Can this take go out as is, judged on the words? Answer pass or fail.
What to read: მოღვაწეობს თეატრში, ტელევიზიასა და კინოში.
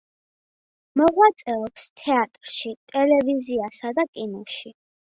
pass